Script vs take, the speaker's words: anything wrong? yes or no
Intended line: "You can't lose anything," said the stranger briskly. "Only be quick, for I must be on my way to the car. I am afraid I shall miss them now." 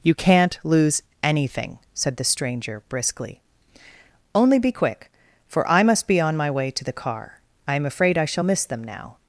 no